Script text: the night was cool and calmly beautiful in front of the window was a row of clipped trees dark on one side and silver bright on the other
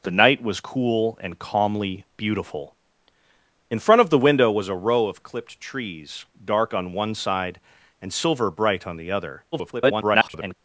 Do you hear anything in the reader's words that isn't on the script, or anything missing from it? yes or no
yes